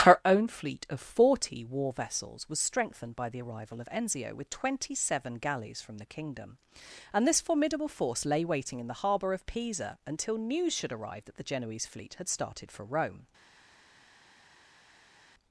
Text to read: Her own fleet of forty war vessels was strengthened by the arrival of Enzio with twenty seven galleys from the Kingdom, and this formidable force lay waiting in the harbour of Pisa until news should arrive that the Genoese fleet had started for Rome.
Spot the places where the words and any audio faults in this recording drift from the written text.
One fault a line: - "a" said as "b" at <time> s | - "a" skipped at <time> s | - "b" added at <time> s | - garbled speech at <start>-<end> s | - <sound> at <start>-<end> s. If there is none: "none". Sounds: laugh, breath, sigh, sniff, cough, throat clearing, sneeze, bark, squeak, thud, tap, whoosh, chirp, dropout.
none